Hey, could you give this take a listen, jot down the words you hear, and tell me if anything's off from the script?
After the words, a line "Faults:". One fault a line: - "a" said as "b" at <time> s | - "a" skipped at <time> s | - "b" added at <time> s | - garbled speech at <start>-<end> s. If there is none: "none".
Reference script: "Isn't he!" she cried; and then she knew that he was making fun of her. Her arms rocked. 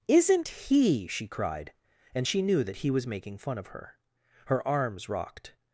"Isn't he!" she cried; and she knew that he was making fun of her. Her arms rocked.
Faults:
- "then" skipped at 2.3 s